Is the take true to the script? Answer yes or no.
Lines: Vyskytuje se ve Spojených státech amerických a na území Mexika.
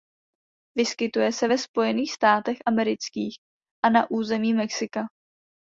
yes